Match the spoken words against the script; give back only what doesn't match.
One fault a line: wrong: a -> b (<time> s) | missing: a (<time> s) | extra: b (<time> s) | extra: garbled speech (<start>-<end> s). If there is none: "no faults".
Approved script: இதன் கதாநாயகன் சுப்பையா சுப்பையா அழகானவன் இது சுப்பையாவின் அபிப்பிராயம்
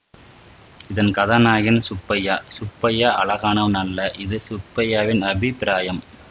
extra: அல்ல (3.8 s)